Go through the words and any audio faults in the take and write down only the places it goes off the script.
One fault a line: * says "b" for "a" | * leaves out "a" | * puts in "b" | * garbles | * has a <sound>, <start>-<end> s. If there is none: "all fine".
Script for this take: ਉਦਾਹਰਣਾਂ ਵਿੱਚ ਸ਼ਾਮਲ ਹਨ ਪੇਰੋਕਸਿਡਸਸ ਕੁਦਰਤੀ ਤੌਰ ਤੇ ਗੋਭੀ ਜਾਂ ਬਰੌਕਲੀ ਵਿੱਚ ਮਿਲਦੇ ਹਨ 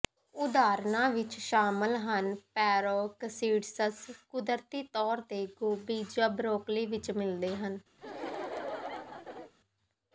* has a laugh, 8.0-9.5 s